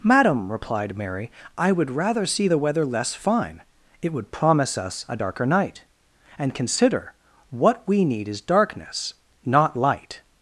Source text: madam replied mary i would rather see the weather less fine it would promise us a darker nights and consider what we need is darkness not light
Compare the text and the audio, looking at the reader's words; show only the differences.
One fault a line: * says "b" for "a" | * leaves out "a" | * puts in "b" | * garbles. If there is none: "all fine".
* says "night" for "nights"